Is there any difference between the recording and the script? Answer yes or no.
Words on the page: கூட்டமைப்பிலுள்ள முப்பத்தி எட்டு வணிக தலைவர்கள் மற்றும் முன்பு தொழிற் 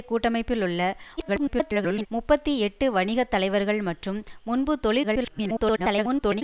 yes